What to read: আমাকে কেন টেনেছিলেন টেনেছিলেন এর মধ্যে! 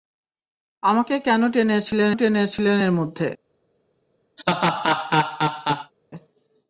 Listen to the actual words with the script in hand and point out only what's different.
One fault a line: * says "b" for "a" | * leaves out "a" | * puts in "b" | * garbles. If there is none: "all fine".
all fine